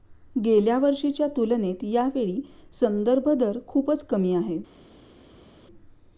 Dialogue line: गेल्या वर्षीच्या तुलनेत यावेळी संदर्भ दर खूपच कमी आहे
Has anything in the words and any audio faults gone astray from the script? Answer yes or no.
no